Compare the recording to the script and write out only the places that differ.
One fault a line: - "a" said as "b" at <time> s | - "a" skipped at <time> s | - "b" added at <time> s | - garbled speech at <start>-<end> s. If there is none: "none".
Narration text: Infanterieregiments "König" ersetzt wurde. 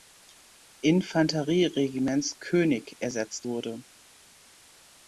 none